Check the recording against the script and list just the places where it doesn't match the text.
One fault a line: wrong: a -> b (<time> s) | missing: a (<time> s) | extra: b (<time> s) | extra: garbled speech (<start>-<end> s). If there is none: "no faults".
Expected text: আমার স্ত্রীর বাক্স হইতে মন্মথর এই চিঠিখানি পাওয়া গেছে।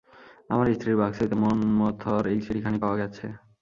no faults